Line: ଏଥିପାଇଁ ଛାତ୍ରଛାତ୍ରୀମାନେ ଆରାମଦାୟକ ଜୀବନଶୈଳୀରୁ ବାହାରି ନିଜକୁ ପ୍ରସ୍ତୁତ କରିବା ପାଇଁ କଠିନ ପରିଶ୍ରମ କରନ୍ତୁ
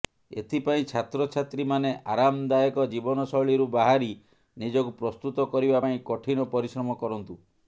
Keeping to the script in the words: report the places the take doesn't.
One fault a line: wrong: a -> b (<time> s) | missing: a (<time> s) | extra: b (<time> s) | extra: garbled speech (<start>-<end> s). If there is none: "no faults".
no faults